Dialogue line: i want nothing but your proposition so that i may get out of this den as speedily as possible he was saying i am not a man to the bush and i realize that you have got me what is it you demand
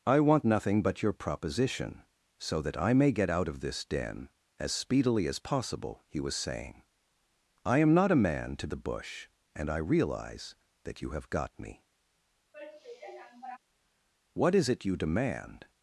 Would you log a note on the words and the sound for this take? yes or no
yes